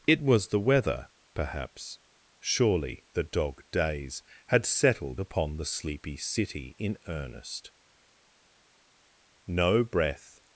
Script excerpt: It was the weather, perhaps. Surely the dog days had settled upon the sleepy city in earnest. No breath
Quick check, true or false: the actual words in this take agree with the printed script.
true